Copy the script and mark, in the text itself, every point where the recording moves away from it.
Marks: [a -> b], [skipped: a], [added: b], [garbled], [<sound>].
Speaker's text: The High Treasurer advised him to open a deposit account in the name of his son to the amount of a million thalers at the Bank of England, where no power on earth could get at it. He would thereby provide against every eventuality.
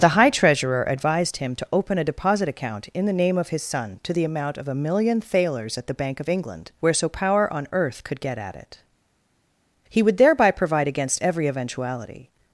The High Treasurer advised him to open a deposit account in the name of his son to the amount of a million thalers at the Bank of England, where [no -> so] power on earth could get at it. He would thereby provide against every eventuality.